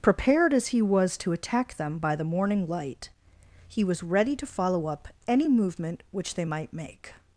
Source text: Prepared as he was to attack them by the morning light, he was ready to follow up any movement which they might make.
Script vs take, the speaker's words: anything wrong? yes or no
no